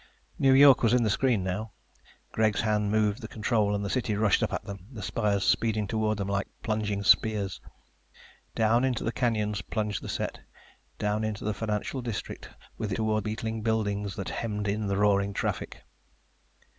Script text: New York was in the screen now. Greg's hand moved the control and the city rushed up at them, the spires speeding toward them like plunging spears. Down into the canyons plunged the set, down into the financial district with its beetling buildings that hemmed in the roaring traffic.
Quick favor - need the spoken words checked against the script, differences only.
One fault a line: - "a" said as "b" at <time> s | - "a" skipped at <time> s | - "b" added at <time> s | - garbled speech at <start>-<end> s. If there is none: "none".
- "its" said as "toward" at 12.9 s